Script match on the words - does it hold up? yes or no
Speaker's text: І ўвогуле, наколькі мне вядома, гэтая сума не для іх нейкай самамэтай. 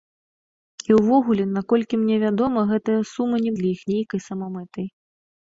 yes